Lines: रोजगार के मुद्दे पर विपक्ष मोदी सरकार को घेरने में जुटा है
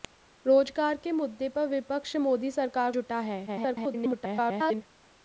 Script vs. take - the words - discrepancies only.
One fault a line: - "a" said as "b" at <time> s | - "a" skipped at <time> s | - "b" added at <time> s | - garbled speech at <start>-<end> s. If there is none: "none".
- "को घेरने में" skipped at 2.9 s
- garbled speech at 3.5-4.8 s